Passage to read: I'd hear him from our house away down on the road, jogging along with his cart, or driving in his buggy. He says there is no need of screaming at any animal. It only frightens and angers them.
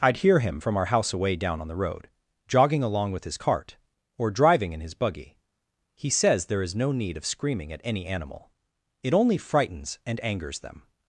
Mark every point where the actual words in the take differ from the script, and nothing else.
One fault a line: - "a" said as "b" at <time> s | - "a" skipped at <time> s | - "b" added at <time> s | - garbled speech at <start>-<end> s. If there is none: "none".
none